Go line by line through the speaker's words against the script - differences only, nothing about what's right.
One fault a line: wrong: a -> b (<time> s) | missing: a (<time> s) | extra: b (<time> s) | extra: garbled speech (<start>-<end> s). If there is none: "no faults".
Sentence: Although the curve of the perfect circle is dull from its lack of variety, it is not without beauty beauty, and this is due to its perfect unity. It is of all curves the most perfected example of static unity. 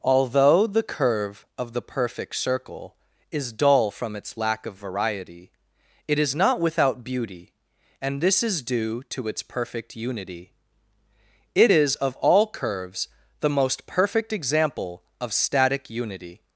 missing: beauty (7.5 s)
wrong: perfected -> perfect (13.9 s)